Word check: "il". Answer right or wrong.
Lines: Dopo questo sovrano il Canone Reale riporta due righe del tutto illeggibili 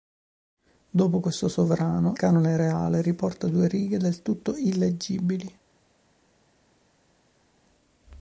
wrong